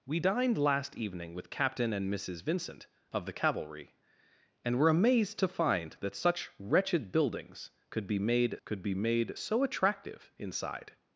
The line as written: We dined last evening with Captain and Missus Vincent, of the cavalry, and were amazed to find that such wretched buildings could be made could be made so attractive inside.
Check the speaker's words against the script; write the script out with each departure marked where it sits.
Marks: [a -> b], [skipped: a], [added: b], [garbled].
We dined last evening with Captain and Missus Vincent, of the cavalry, and were amazed to find that such wretched buildings could be made could be made so attractive inside.